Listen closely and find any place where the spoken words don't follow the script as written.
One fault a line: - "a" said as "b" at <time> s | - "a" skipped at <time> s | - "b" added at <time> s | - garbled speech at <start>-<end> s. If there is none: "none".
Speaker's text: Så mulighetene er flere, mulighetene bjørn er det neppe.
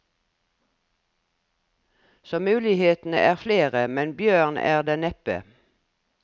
- "mulighetene" said as "men" at 3.9 s